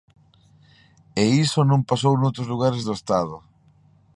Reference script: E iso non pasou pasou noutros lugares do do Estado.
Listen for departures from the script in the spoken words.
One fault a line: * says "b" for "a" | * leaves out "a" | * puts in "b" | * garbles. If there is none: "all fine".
* leaves out "pasou"
* leaves out "do"